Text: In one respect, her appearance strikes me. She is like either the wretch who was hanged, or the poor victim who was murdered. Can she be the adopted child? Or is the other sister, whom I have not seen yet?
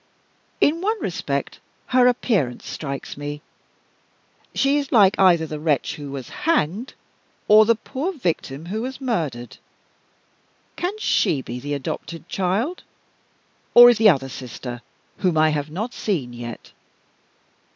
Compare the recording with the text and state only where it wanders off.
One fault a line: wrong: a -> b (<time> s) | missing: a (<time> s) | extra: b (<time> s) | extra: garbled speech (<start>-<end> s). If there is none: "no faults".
no faults